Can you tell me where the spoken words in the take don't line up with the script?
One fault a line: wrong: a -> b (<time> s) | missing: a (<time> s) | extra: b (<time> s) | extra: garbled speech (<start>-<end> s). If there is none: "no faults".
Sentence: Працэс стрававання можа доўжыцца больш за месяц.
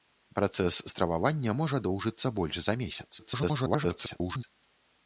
extra: garbled speech (3.2-4.4 s)